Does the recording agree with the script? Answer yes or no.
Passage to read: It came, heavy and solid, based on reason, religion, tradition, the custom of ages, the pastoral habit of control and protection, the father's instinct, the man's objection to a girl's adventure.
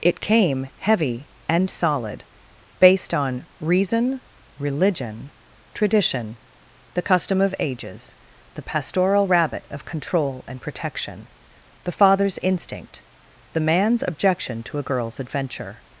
no